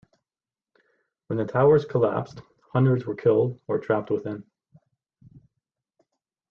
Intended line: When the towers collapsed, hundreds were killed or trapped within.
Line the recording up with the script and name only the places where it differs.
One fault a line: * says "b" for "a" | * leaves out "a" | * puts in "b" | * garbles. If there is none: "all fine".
all fine